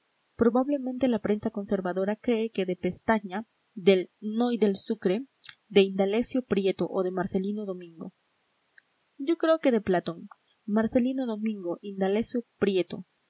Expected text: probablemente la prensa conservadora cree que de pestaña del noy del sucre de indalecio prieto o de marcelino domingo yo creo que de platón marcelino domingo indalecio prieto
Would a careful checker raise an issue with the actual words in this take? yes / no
no